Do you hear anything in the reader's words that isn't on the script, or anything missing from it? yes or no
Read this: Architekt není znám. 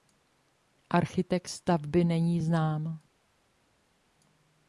yes